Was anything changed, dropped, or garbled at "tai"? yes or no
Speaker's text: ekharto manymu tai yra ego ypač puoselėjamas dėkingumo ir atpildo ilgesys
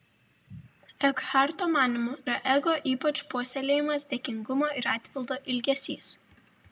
yes